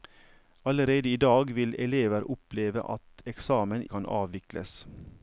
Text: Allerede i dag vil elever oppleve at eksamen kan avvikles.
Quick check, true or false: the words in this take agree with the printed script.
true